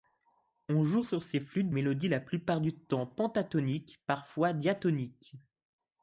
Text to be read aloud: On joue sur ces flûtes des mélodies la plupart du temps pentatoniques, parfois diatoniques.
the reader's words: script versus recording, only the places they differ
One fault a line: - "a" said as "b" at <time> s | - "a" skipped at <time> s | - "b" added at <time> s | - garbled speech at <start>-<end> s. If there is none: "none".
- "des" skipped at 1.7 s